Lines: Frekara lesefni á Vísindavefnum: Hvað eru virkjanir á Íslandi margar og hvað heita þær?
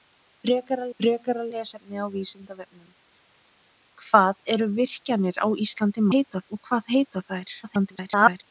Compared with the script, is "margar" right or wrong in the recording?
wrong